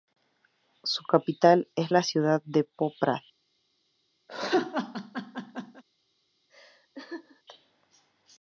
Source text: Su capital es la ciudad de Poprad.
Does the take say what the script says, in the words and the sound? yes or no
no